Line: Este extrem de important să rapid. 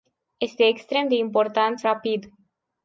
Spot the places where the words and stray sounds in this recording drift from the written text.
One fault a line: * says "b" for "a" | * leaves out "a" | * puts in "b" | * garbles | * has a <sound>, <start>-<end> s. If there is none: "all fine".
all fine